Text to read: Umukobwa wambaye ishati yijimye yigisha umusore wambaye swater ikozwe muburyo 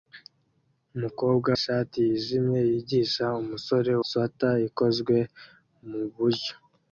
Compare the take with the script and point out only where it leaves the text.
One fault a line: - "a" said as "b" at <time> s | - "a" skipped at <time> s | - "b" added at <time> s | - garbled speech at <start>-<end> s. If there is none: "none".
- "wambaye" skipped at 1.5 s
- "wambaye" skipped at 3.9 s